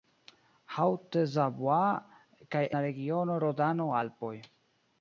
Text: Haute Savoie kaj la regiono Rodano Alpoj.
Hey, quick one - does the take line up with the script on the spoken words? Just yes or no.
yes